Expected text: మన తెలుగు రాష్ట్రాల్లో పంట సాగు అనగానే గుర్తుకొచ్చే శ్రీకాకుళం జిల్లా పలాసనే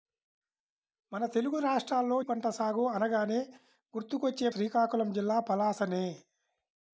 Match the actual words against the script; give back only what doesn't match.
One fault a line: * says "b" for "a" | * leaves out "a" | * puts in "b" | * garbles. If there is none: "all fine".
all fine